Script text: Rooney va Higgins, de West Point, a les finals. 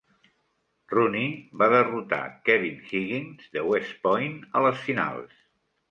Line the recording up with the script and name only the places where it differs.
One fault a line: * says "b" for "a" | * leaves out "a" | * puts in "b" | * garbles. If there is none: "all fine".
* puts in "derrotar Kevin"